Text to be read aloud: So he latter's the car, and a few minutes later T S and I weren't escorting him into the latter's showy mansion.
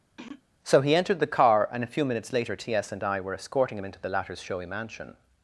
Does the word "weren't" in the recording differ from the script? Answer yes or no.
yes